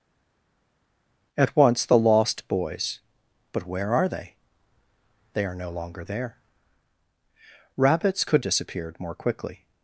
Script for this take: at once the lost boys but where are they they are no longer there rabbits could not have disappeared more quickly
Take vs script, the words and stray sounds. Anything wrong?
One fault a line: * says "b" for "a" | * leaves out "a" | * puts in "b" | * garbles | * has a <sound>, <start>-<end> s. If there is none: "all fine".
* leaves out "not have"